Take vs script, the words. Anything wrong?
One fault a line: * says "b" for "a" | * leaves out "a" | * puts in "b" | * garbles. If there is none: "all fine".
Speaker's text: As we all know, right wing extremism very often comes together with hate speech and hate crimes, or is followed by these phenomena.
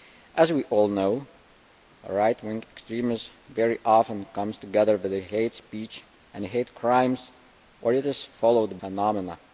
* leaves out "by these"